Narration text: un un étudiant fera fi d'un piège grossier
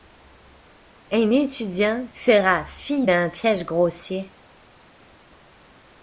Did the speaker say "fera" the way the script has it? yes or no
yes